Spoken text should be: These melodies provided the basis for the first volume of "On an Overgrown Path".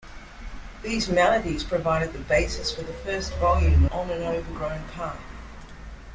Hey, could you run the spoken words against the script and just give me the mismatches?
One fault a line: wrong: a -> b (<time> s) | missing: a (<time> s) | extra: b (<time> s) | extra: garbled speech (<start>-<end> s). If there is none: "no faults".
missing: of (3.9 s)